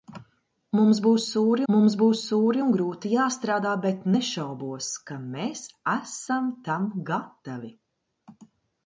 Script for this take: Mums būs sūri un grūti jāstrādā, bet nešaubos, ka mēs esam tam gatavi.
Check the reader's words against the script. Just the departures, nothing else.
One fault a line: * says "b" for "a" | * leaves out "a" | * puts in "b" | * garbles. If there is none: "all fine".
* puts in "mums būs sūri"